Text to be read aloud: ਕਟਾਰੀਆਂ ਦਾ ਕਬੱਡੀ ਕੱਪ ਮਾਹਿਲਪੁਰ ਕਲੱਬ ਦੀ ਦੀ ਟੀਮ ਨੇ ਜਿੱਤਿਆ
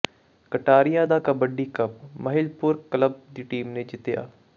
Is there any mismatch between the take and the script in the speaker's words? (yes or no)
yes